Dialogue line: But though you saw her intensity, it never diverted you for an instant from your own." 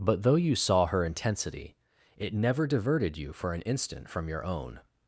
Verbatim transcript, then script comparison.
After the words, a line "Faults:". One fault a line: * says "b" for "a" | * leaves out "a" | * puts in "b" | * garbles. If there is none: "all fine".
But though you saw her intensity, it never diverted you for an instant from your own."
Faults:
all fine